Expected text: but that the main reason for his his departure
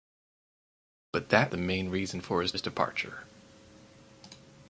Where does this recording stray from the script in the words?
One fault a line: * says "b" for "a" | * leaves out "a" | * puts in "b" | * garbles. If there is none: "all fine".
all fine